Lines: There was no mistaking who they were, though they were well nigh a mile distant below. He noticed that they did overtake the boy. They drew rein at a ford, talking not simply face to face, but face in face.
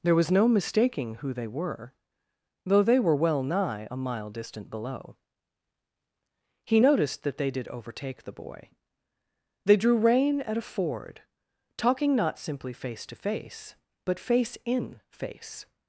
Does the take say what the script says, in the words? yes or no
yes